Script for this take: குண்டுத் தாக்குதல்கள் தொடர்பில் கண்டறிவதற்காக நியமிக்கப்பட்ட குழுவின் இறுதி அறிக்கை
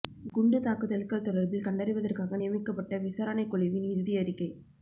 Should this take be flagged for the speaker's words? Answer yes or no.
yes